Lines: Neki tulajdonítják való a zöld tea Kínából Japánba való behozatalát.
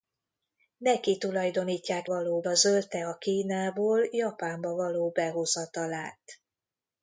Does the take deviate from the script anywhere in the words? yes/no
no